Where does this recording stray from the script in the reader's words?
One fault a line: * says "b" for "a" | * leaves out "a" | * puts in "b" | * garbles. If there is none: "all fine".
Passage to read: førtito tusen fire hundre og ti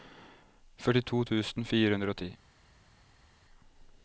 all fine